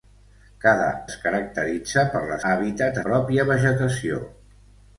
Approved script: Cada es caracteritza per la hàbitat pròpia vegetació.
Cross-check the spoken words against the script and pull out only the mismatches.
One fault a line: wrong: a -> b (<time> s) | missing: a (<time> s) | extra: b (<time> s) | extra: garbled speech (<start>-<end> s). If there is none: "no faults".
no faults